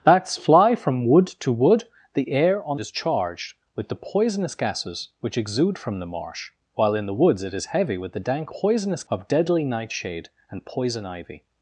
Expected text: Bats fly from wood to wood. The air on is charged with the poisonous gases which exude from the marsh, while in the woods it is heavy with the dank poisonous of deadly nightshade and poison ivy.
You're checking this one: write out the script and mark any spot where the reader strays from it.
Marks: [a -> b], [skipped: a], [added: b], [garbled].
Bats fly from wood to wood. The air on is charged with the poisonous gases which exude from the marsh, while in the woods it is heavy with the dank poisonous of deadly nightshade and poison ivy.